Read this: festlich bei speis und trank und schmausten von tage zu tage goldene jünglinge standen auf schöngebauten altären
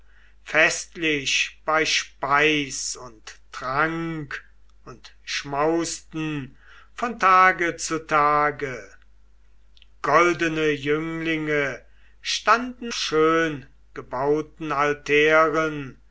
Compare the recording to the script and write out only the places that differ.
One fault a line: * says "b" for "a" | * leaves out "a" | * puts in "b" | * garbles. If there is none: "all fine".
* leaves out "auf"